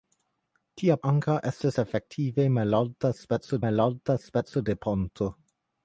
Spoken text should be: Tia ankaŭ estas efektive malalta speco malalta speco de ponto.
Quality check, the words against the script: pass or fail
pass